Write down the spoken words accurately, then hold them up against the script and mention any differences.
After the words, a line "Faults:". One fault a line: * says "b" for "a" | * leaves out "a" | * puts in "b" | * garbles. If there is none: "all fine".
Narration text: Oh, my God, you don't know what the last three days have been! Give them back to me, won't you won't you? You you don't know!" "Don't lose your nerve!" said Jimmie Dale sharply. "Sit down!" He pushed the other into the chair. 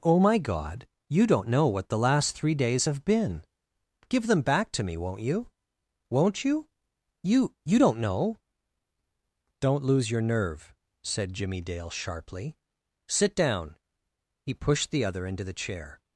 Oh, my God, you don't know what the last three days have been! Give them back to me, won't you won't you? You you don't know!" "Don't lose your nerve!" said Jimmie Dale sharply. "Sit down!" He pushed the other into the chair.
Faults:
all fine